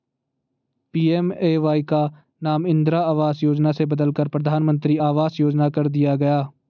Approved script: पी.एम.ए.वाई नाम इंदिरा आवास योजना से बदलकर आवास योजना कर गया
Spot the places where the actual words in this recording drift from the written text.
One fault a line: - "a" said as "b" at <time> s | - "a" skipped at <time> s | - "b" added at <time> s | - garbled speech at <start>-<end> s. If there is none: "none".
- "का" added at 1.8 s
- "प्रधानमंत्री" added at 4.3 s
- "दिया" added at 5.9 s